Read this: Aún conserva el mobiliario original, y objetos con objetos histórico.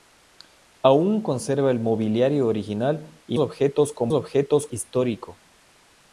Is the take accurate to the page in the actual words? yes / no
yes